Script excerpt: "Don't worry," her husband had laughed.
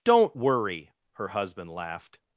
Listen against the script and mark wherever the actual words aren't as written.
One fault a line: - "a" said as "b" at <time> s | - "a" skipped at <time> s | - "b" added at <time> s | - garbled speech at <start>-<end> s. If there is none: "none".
- "had" skipped at 1.7 s